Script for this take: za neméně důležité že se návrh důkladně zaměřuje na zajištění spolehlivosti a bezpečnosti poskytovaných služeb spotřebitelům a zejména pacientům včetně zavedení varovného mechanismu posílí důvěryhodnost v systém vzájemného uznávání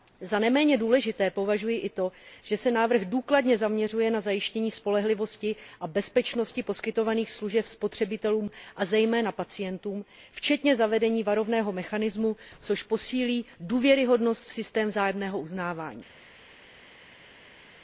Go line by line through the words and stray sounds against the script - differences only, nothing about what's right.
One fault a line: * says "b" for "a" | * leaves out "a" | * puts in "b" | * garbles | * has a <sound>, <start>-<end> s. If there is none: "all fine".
* puts in "považuji i to"
* puts in "což"